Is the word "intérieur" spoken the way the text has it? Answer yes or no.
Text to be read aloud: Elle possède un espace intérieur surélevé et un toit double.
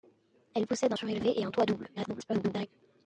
no